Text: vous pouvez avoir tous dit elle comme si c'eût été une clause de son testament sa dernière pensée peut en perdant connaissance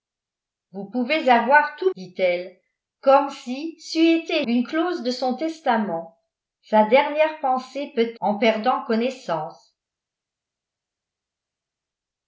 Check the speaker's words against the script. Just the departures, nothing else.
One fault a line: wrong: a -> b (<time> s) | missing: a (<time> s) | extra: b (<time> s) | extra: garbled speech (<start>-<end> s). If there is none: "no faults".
no faults